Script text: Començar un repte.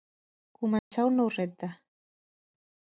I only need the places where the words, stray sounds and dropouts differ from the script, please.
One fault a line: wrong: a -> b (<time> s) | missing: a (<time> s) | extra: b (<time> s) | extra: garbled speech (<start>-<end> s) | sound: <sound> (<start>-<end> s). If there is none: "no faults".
sound: dropout (0.8-0.9 s)
extra: nou (1.2 s)